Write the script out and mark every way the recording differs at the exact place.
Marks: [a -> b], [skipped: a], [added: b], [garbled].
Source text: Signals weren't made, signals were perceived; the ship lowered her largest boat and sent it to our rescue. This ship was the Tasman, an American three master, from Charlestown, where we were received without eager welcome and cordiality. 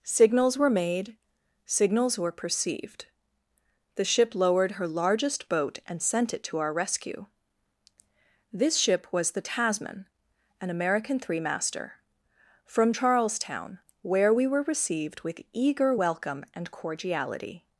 Signals [weren't -> were] made, signals were perceived; the ship lowered her largest boat and sent it to our rescue. This ship was the Tasman, an American three master, from Charlestown, where we were received [without -> with] eager welcome and cordiality.